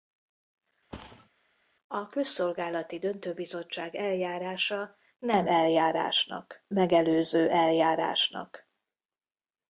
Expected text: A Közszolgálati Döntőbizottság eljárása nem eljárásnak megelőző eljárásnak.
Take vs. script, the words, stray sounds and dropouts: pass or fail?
fail